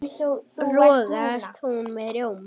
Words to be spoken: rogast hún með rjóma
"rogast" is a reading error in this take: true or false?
false